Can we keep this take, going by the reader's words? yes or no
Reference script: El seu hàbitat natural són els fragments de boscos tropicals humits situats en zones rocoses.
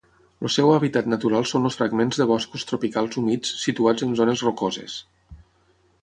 yes